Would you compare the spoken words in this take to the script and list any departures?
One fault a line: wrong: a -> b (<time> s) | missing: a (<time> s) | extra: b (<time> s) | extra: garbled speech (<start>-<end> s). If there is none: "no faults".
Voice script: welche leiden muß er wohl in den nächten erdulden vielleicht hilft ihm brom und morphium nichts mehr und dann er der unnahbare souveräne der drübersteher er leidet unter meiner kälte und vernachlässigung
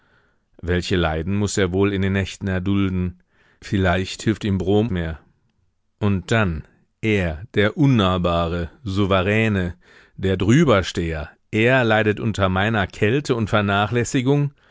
missing: und morphium nichts (4.9 s)